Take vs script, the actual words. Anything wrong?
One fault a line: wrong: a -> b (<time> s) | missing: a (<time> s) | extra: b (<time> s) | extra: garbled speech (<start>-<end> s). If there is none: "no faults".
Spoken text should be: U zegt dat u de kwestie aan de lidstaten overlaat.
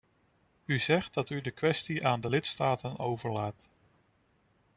no faults